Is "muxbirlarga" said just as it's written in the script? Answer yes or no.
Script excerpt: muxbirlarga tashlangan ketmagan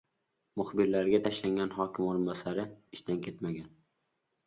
yes